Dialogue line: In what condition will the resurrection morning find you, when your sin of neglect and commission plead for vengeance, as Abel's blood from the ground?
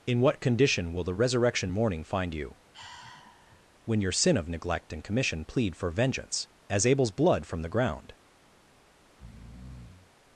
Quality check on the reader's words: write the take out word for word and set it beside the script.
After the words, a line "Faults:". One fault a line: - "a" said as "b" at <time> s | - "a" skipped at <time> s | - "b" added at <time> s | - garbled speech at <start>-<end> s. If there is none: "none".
In what condition will the resurrection morning find you, when your sin of neglect and commission plead for vengeance, as Abel's blood from the ground?
Faults:
none